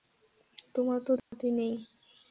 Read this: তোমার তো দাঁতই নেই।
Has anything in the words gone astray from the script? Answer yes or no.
no